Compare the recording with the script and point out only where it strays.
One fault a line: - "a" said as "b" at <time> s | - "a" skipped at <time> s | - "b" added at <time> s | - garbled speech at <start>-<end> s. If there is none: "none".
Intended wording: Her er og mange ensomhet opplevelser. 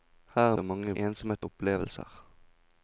none